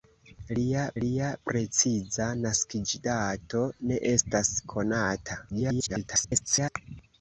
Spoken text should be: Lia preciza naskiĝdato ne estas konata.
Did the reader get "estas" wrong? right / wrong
right